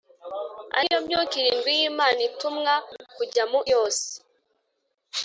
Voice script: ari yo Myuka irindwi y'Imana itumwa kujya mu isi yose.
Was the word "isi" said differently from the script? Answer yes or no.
yes